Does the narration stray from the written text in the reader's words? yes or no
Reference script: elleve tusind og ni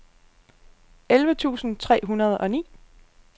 yes